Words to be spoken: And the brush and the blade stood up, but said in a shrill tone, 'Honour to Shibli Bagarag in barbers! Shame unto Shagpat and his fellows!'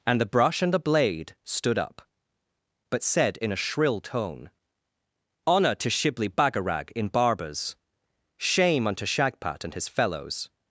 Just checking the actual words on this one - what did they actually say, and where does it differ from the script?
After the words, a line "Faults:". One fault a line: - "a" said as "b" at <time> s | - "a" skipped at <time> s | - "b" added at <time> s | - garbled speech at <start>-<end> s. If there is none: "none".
And the brush and the blade stood up, but said in a shrill tone, 'Honour to Shibli Bagarag in barbers! Shame unto Shagpat and his fellows!'
Faults:
none